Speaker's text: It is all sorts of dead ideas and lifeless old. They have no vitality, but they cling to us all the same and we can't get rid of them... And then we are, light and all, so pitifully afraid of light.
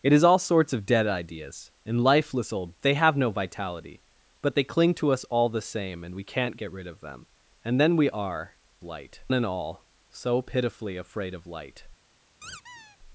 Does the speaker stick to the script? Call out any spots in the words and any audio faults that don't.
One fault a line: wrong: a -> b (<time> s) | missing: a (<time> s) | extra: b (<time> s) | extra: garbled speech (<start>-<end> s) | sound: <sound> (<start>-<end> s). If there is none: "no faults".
sound: squeak (12.4-13.0 s)